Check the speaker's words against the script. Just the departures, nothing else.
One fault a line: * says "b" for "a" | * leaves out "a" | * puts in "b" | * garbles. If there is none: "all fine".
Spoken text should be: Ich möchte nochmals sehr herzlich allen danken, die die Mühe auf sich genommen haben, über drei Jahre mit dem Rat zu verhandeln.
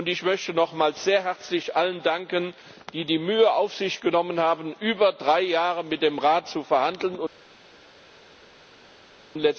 all fine